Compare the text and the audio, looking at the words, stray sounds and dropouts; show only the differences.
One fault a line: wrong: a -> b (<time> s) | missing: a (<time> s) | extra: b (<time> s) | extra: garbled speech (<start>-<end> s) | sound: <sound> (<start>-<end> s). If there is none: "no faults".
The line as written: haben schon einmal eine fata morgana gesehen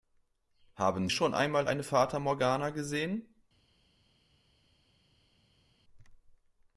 no faults